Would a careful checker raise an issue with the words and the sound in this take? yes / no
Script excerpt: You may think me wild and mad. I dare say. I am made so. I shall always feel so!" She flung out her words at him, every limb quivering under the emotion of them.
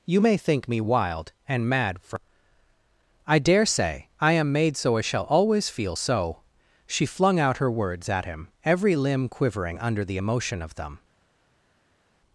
yes